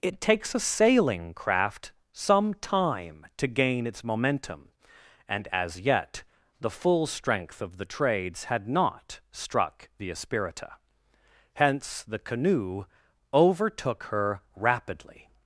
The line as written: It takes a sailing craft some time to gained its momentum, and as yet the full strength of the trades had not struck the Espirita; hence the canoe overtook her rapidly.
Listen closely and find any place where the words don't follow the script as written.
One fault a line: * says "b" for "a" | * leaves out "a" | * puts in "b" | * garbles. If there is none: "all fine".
* says "gain" for "gained"